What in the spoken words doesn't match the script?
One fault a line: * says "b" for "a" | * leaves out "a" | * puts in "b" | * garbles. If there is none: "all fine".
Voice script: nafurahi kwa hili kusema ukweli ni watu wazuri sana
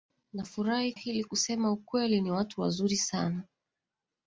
* leaves out "kwa"